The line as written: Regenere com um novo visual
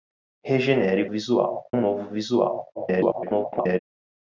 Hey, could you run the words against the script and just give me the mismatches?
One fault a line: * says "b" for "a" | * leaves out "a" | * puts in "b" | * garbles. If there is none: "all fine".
* says "visual" for "com"
* garbles